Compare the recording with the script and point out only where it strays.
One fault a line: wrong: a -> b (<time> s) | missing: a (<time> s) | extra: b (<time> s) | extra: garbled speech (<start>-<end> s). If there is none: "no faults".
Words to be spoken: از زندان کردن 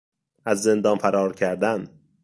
extra: فرار (1.0 s)